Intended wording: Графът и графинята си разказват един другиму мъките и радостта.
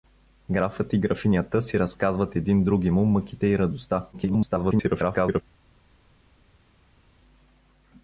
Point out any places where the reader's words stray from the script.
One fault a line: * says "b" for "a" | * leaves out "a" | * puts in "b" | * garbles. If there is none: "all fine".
* garbles